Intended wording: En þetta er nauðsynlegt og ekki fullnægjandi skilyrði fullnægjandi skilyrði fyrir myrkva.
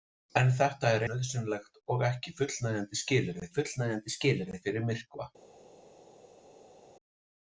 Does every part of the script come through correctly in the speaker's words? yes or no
yes